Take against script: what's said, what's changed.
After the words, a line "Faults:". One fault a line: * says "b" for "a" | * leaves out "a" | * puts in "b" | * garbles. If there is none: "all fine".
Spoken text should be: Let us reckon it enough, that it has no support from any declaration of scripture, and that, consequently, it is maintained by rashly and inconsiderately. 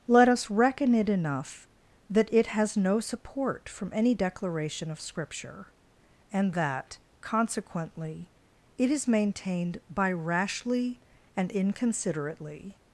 Let us reckon it enough, that it has no support from any declaration of scripture, and that, consequently, it is maintained by rashly and inconsiderately.
Faults:
all fine